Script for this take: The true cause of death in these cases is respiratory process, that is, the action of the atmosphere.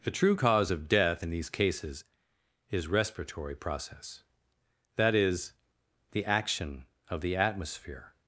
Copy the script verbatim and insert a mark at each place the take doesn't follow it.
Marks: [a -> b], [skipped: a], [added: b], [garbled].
The true cause of death in these cases is respiratory process, that is, the action of the atmosphere.